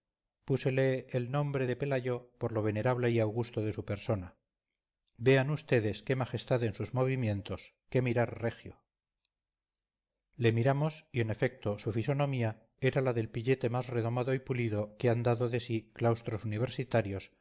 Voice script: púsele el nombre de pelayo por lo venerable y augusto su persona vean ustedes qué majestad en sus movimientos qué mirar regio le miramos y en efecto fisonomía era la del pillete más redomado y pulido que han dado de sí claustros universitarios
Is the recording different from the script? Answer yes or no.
yes